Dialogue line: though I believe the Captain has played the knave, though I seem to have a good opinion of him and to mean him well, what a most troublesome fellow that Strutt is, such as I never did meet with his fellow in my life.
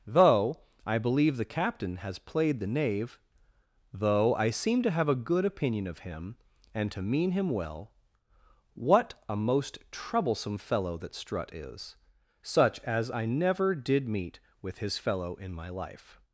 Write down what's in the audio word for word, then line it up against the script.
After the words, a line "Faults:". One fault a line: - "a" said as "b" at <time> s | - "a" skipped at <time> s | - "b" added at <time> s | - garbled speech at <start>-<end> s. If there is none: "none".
though I believe the Captain has played the knave, though I seem to have a good opinion of him and to mean him well, what a most troublesome fellow that Strutt is, such as I never did meet with his fellow in my life.
Faults:
none